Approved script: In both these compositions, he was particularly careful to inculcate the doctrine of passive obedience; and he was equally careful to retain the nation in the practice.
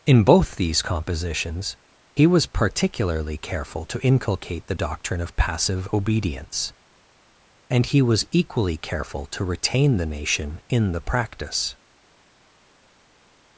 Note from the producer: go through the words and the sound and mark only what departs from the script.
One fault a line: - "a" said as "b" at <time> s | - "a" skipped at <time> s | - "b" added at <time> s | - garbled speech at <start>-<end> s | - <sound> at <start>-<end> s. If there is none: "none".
none